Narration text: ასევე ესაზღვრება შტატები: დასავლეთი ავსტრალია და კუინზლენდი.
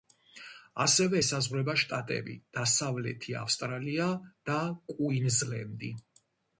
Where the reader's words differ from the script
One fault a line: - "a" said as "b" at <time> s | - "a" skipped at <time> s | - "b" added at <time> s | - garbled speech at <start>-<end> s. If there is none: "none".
none